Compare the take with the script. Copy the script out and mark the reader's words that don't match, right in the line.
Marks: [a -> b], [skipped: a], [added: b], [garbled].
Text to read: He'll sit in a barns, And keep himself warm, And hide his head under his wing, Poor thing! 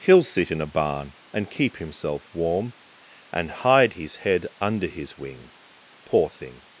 He'll sit in a [barns, -> barn] And keep himself warm, And hide his head under his wing, Poor thing!